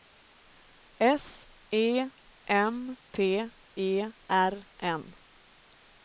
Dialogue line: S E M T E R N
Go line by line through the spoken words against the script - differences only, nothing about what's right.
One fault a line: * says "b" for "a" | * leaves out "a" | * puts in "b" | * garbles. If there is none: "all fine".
all fine